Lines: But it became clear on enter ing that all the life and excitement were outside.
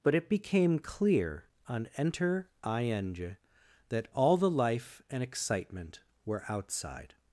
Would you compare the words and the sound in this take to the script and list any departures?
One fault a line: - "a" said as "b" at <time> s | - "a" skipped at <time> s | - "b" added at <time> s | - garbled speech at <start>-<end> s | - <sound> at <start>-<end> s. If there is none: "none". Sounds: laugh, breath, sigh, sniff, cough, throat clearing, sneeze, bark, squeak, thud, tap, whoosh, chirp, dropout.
none